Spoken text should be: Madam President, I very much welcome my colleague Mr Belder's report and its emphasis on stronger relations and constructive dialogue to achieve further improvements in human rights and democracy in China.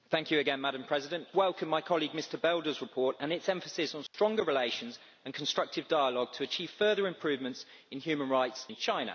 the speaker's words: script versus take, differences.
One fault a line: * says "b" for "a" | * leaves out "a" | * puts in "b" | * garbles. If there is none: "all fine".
* leaves out "I very much"
* leaves out "and democracy"